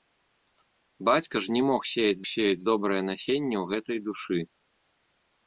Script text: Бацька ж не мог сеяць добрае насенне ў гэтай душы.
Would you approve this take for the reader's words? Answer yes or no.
no